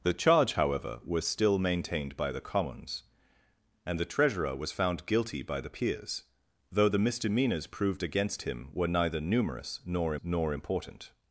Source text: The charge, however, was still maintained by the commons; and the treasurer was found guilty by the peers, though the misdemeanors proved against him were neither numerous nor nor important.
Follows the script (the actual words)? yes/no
yes